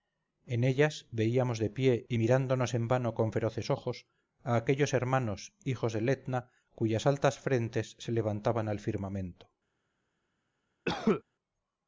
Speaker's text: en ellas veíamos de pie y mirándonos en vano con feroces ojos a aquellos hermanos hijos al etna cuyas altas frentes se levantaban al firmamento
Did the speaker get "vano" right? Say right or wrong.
right